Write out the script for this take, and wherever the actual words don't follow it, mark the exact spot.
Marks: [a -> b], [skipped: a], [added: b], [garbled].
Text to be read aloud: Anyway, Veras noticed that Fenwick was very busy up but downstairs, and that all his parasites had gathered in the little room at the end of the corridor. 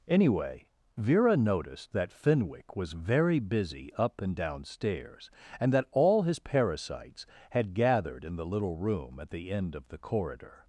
Anyway, [Veras -> Vera] noticed that Fenwick was very busy up [but -> and] downstairs, and that all his parasites had gathered in the little room at the end of the corridor.